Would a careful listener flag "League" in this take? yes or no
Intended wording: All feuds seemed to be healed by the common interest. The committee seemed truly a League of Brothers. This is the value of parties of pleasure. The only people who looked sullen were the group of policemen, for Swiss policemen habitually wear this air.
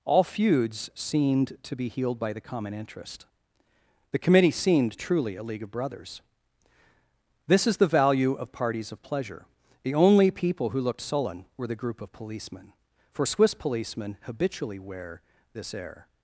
no